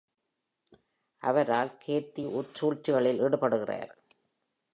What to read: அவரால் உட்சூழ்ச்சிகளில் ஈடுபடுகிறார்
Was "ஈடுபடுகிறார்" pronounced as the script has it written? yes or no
yes